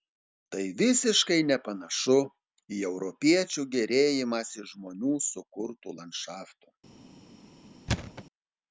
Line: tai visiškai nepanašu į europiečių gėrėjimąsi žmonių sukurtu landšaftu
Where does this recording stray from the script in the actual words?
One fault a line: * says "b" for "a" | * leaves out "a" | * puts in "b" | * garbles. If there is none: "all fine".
all fine